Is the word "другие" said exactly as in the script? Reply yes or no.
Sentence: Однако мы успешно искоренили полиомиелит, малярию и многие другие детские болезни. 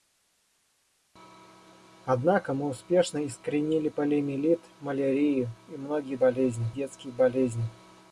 no